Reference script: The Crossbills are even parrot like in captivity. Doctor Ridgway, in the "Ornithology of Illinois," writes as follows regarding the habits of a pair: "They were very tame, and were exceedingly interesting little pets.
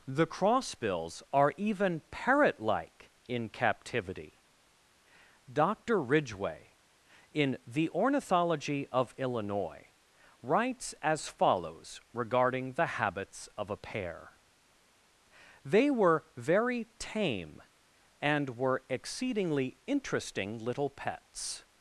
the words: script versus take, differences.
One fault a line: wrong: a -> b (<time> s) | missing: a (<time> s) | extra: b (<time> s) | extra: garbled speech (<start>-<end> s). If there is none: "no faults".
no faults